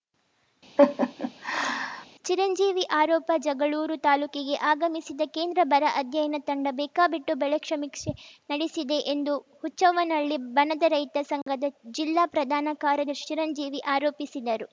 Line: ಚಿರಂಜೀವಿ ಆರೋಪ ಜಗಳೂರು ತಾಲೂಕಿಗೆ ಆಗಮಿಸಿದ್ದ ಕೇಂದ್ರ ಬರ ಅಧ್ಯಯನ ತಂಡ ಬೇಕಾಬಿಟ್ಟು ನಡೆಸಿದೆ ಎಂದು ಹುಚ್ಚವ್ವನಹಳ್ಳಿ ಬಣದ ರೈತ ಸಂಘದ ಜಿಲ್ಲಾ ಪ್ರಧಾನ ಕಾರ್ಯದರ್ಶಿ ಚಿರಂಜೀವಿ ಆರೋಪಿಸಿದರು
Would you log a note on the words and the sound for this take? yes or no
yes